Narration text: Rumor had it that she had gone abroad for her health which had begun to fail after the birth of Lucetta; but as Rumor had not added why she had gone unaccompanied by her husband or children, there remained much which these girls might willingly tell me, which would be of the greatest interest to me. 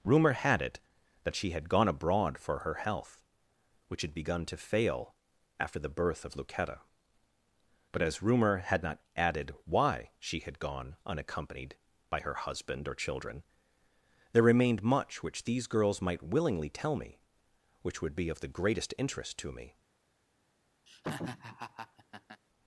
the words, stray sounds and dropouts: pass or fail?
fail